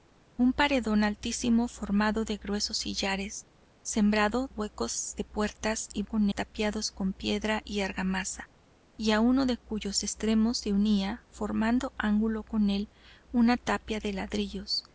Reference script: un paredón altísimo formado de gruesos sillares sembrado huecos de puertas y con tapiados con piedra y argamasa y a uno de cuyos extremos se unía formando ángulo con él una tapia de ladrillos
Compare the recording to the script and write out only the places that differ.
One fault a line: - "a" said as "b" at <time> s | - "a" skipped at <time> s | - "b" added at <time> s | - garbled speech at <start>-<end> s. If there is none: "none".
none